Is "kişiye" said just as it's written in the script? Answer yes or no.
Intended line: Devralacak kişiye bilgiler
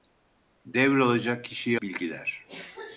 yes